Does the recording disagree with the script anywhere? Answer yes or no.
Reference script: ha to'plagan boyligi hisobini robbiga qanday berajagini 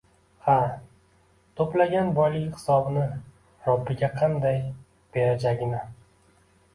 no